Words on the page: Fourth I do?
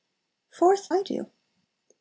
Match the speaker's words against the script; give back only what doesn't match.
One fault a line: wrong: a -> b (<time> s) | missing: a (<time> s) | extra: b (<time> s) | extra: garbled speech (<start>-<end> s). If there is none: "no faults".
no faults